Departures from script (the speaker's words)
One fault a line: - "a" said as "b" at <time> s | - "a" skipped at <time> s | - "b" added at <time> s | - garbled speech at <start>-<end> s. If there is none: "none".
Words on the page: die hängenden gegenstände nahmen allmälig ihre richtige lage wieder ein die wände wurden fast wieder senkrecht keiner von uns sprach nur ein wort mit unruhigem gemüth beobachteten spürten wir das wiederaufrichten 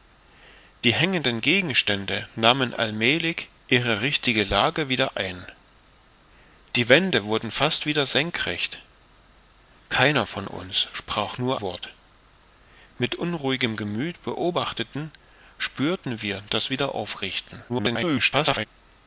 - "ein" skipped at 11.6 s
- garbled speech at 17.7-18.7 s